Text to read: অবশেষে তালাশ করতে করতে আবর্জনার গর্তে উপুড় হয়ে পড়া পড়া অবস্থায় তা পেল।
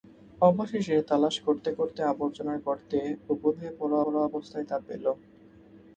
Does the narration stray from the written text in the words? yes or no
no